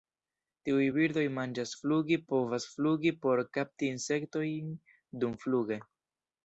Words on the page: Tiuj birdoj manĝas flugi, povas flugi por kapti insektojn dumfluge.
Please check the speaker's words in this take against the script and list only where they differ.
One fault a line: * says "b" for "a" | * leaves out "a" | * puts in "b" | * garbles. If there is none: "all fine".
all fine